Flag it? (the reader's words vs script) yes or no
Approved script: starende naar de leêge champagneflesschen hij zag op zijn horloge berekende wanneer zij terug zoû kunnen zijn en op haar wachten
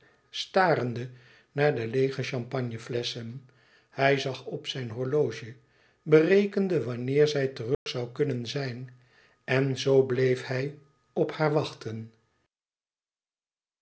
yes